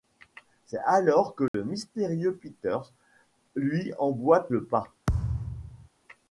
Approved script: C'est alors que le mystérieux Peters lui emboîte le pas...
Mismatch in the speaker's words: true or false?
false